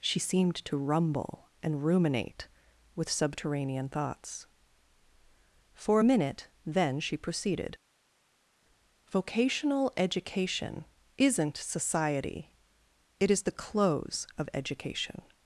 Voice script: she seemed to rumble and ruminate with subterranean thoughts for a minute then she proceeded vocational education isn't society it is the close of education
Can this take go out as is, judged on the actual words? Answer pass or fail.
pass